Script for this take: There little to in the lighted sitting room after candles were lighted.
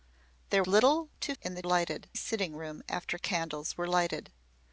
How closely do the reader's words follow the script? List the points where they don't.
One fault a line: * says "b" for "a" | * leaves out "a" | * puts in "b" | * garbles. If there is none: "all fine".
all fine